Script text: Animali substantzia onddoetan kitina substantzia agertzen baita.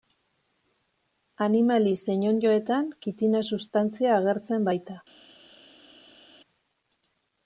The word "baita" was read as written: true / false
true